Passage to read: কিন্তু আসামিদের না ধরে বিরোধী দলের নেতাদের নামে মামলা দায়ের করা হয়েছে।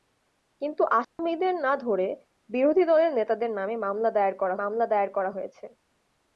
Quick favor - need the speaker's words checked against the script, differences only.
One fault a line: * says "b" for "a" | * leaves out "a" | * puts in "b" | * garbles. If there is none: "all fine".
* puts in "মামলা দায়ের করা"